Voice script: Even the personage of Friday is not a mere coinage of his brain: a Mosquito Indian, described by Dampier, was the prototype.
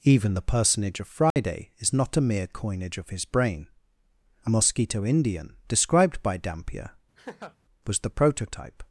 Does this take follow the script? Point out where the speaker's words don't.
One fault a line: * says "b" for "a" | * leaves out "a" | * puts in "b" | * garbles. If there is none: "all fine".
all fine